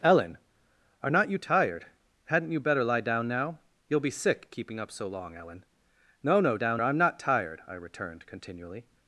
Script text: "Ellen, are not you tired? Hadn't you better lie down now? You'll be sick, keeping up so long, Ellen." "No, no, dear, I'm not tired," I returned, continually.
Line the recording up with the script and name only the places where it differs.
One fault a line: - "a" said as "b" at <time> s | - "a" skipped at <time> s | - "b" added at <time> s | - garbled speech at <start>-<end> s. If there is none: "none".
- "dear" said as "down" at 6.6 s